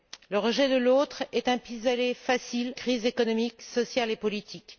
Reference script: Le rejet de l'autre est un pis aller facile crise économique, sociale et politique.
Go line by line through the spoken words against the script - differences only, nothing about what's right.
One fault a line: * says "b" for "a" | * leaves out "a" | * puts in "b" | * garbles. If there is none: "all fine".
all fine